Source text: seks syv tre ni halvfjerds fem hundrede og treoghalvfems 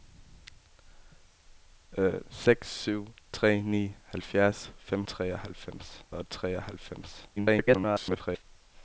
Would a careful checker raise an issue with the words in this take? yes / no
yes